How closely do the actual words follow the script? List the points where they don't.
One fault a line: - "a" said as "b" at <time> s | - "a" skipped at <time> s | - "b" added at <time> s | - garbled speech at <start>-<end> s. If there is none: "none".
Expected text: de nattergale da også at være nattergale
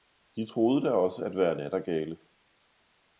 - "nattergale" said as "troede" at 0.5 s